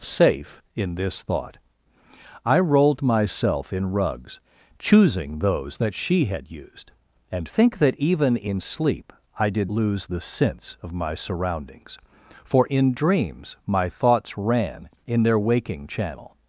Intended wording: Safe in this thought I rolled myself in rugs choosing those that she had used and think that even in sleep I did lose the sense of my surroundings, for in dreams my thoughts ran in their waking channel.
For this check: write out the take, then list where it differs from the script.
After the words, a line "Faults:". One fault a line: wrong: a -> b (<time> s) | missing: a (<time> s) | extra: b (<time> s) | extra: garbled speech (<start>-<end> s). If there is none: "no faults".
Safe in this thought I rolled myself in rugs choosing those that she had used and think that even in sleep I did lose the sense of my surroundings, for in dreams my thoughts ran in their waking channel.
Faults:
no faults